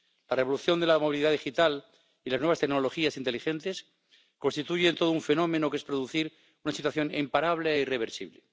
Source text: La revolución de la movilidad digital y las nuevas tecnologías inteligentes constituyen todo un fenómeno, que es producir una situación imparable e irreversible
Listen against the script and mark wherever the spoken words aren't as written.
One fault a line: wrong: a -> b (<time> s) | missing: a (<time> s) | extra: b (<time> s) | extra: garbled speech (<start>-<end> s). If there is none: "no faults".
no faults